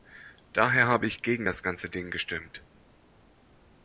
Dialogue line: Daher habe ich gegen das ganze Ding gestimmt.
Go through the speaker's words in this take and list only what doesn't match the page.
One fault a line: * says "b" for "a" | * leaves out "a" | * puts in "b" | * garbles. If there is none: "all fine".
all fine